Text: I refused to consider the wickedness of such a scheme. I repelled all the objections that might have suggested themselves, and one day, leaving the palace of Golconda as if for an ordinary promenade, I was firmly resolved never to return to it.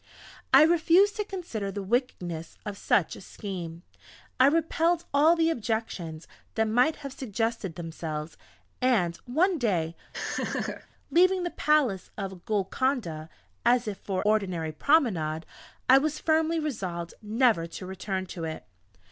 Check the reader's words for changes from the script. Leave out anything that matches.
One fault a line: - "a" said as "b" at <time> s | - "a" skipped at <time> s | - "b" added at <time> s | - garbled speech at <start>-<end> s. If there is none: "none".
- "an" skipped at 14.2 s